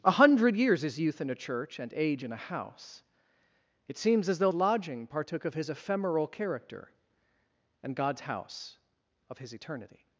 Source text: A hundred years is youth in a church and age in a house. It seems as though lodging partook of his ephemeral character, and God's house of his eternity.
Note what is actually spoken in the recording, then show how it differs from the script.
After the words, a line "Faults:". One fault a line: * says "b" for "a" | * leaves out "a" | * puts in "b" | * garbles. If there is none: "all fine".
A hundred years is youth in a church and age in a house. It seems as though lodging partook of his ephemeral character, and God's house of his eternity.
Faults:
all fine